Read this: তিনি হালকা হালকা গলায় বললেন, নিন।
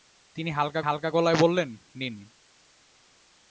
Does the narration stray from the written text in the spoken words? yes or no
no